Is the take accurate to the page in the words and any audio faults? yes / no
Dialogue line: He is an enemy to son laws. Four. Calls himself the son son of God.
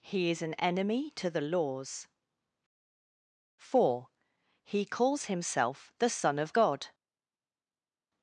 no